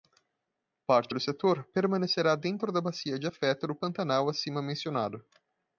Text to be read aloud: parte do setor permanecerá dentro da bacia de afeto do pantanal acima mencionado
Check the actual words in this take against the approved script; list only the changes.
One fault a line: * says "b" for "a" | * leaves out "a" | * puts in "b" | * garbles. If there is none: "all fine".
all fine